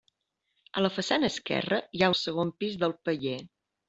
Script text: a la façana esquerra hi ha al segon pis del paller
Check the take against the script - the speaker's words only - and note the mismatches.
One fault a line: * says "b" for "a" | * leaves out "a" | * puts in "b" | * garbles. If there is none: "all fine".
all fine